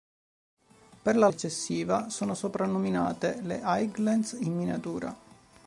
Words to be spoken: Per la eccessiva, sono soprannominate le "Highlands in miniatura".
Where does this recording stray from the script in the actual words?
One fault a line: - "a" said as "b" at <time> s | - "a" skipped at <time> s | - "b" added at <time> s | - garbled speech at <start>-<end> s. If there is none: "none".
none